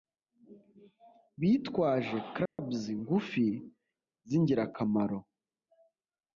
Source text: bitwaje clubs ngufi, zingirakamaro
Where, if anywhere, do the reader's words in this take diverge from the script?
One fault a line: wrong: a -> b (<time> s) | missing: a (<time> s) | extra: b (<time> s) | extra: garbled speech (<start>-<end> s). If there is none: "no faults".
no faults